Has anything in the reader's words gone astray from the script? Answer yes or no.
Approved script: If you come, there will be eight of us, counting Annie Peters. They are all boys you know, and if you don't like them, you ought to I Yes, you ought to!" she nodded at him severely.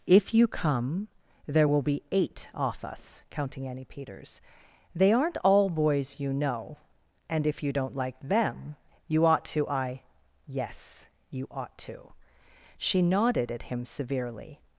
yes